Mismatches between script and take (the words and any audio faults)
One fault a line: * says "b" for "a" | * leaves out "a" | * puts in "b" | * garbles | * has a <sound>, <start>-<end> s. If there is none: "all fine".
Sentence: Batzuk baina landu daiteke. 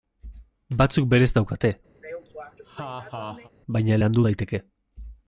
* puts in "berez daukate"
* has a laugh, 2.0-3.5 s